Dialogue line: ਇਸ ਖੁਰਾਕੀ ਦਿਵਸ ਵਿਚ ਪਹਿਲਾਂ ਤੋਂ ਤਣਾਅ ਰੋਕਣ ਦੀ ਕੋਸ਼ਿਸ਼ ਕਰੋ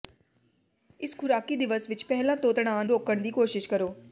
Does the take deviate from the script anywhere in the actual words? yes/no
no